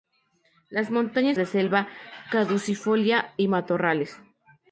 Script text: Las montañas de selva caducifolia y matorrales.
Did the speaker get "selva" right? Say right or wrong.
right